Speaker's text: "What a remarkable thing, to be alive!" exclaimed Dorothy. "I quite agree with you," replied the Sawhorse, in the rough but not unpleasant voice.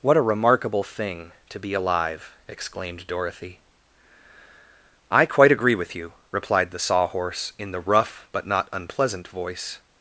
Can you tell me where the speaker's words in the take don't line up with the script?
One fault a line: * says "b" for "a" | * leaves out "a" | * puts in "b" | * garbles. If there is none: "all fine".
all fine